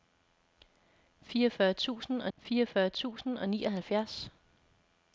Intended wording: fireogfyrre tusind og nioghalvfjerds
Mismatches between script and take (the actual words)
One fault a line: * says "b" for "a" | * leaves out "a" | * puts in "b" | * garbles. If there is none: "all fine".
* puts in "fireogfyrre tusind og"